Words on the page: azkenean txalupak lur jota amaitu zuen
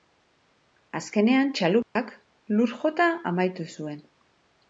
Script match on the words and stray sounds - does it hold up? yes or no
no